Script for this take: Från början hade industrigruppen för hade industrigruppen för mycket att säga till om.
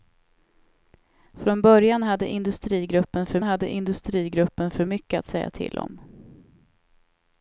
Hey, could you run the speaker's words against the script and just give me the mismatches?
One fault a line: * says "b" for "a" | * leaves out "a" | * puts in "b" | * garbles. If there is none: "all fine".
all fine